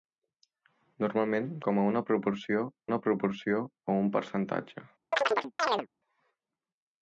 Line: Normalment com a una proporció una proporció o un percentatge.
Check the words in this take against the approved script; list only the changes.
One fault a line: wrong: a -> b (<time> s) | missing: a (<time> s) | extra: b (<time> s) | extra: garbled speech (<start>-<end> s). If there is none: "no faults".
no faults